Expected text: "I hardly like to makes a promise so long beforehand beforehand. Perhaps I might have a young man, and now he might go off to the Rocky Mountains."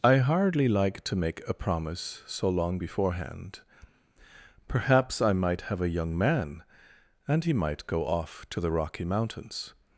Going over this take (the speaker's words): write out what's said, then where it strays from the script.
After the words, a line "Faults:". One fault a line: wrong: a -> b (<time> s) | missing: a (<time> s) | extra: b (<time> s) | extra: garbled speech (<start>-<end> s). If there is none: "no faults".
"I hardly like to make a promise so long beforehand. Perhaps I might have a young man, and he might go off to the Rocky Mountains."
Faults:
wrong: makes -> make (1.1 s)
missing: beforehand (3.6 s)
missing: now (7.4 s)